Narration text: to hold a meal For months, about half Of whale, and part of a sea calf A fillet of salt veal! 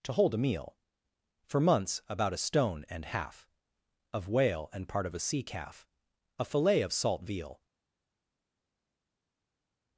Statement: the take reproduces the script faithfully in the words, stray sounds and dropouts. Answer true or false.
false